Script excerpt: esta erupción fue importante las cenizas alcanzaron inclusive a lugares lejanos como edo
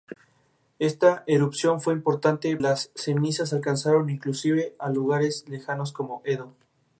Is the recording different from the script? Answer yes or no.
no